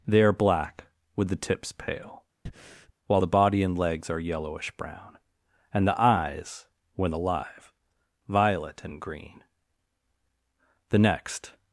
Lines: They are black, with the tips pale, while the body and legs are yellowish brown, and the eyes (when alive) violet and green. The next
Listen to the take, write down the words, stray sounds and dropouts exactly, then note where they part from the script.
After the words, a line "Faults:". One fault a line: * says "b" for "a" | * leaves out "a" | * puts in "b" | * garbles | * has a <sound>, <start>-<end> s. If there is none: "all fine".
They are black, with the tips pale, while the body and legs are yellowish brown, and the eyes (when alive) violet and green. The next
Faults:
* has a breath, 2.5-2.9 s